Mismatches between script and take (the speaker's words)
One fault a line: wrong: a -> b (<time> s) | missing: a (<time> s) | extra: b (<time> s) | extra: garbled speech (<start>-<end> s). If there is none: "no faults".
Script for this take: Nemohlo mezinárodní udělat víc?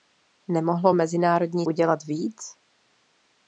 no faults